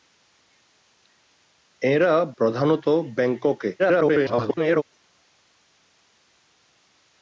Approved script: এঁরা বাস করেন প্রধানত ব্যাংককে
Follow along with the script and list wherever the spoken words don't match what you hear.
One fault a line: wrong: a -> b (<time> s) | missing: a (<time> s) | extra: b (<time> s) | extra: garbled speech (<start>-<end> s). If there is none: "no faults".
missing: বাস করেন (2.1 s)
extra: garbled speech (3.8-4.8 s)